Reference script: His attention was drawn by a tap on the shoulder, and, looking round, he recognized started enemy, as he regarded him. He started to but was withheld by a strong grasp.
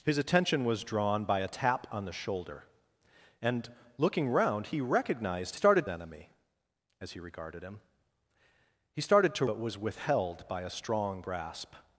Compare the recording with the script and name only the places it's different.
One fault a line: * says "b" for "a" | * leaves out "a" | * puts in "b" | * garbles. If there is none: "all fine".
all fine